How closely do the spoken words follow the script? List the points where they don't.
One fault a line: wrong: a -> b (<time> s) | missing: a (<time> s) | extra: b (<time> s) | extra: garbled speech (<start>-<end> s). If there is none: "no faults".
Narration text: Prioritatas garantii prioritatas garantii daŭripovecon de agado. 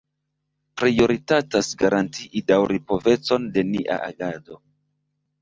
missing: prioritatas garantii (2.4 s)
extra: nia (3.8 s)